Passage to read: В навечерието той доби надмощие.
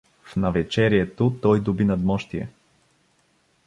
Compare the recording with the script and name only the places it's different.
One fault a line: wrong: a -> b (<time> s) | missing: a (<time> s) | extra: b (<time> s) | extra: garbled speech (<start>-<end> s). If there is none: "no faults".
no faults